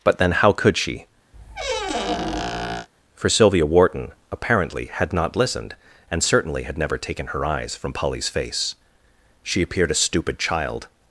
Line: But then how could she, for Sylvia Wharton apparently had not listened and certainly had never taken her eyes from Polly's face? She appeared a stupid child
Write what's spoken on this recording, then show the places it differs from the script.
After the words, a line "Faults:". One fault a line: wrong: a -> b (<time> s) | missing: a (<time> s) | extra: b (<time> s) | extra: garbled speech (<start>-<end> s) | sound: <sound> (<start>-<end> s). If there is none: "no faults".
But then how could she, for Sylvia Wharton apparently had not listened and certainly had never taken her eyes from Polly's face? She appeared a stupid child
Faults:
sound: squeak (1.3-2.9 s)